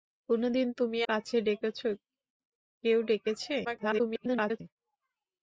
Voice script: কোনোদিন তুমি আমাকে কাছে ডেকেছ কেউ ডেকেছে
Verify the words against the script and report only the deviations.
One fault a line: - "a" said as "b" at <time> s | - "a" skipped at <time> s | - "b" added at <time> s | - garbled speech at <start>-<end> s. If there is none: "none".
- "আমাকে" skipped at 1.0 s
- garbled speech at 3.6-4.6 s